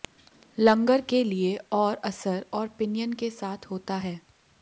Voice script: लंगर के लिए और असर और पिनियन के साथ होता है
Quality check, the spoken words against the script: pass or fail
pass